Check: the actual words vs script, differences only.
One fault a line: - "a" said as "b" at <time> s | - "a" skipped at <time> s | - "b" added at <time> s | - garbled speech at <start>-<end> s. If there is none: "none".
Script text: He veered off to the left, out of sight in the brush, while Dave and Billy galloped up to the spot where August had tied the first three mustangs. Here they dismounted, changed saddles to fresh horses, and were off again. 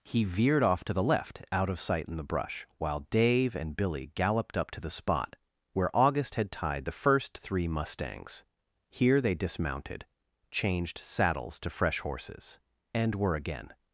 - "off" skipped at 13.4 s